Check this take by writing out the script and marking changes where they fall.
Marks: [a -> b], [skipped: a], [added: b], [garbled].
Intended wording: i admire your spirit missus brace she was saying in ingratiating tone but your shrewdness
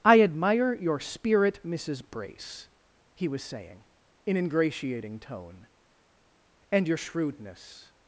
i admire your spirit missus brace [she -> he] was saying in ingratiating tone [but -> and] your shrewdness